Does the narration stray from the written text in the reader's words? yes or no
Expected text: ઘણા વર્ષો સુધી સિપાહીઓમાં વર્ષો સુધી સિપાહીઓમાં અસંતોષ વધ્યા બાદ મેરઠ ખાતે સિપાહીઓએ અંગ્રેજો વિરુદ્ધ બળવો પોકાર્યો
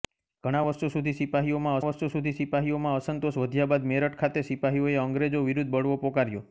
no